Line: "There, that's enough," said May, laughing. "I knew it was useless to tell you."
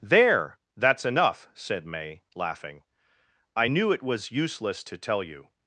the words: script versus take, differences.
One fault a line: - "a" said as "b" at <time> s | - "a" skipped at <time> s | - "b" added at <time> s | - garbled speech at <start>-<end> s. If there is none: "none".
none